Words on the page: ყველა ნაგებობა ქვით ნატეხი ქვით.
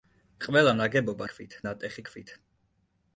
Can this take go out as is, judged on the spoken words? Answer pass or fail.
pass